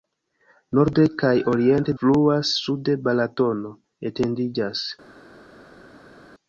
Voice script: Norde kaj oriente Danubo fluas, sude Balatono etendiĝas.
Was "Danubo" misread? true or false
true